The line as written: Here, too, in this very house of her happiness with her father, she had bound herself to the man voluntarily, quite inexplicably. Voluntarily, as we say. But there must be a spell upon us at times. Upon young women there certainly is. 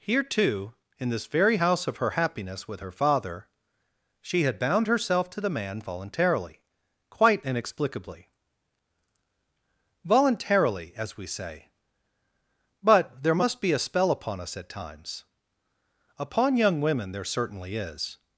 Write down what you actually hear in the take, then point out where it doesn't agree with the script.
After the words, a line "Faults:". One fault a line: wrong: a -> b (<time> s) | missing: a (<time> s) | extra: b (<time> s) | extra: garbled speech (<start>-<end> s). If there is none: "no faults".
Here, too, in this very house of her happiness with her father, she had bound herself to the man voluntarily, quite inexplicably. Voluntarily, as we say. But there must be a spell upon us at times. Upon young women there certainly is.
Faults:
no faults